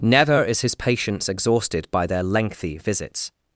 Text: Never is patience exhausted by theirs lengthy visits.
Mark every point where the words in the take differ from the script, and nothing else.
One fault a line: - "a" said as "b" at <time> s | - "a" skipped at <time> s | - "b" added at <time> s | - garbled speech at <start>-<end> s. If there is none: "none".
- "his" added at 0.6 s
- "theirs" said as "their" at 2.1 s